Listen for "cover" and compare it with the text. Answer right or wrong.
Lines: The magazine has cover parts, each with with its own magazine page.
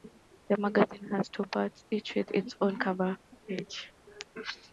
wrong